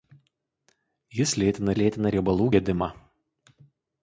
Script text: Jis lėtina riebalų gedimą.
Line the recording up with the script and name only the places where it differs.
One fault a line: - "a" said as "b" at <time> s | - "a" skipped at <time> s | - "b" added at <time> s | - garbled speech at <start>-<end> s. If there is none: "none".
- "lėtina" added at 1.8 s